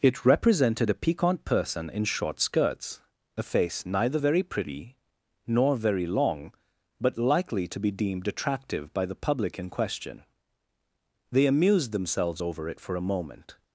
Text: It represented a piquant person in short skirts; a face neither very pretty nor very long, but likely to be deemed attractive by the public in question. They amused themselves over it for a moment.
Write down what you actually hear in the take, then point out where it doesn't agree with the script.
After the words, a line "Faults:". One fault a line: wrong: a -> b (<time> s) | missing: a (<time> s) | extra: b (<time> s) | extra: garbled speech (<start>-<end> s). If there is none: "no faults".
It represented a piquant person in short skirts; a face neither very pretty nor very long, but likely to be deemed attractive by the public in question. They amused themselves over it for a moment.
Faults:
no faults